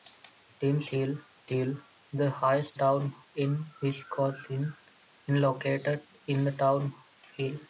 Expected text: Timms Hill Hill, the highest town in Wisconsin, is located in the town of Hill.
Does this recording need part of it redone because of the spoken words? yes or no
no